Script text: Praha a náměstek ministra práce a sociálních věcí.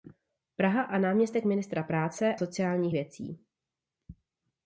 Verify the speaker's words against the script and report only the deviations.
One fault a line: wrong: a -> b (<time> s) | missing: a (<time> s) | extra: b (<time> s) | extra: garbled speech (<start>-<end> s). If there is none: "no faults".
missing: a (2.4 s)